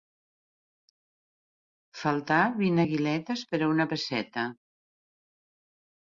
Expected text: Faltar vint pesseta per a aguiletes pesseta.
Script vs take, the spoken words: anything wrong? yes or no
yes